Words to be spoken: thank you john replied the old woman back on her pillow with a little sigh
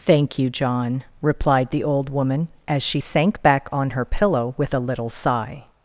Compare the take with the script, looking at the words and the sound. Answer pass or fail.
fail